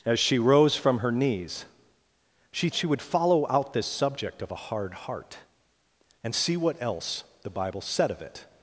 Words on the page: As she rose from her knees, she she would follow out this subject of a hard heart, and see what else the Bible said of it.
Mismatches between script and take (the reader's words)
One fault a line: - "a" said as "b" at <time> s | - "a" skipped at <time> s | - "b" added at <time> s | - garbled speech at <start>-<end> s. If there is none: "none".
none